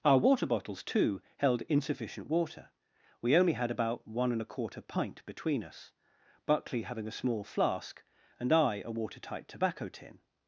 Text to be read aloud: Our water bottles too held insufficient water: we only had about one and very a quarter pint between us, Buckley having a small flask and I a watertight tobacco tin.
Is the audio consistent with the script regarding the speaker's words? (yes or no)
no